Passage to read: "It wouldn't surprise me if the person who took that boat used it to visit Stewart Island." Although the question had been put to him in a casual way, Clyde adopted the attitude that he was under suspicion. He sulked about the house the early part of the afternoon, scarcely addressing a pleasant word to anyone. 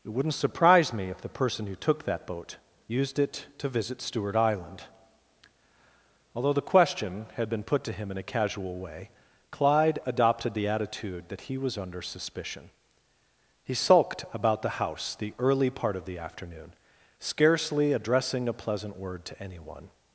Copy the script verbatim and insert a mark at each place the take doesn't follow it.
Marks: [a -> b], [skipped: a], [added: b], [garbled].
"It wouldn't surprise me if the person who took that boat used it to visit Stewart Island." Although the question had been put to him in a casual way, Clyde adopted the attitude that he was under suspicion. He sulked about the house the early part of the afternoon, scarcely addressing a pleasant word to anyone.